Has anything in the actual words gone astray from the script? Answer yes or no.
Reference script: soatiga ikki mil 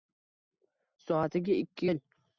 no